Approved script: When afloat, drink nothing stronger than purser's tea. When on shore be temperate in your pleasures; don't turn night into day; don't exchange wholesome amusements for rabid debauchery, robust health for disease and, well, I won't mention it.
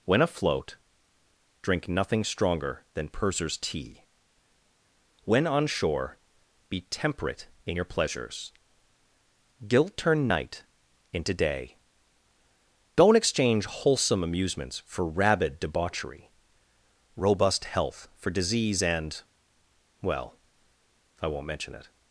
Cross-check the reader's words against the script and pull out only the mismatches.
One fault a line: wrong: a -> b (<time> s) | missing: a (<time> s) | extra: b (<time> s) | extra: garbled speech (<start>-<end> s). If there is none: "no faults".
wrong: don't -> guilt (9.7 s)